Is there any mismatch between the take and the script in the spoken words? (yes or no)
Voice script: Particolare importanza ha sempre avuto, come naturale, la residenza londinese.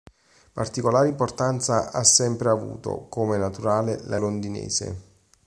yes